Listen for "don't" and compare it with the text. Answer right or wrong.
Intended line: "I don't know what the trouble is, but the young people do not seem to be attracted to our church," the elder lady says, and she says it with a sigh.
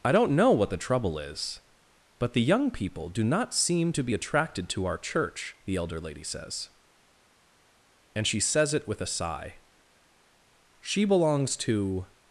right